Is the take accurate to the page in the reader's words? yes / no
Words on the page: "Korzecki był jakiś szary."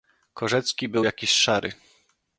yes